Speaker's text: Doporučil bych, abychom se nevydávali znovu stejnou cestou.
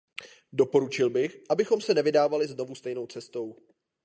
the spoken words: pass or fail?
pass